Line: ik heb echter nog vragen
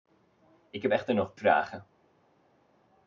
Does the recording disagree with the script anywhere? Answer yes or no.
no